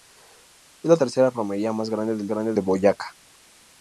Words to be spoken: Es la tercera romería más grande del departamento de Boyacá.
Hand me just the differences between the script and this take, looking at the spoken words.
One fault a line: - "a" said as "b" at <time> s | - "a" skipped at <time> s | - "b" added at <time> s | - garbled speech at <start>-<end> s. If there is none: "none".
- "departamento" said as "grande" at 2.3 s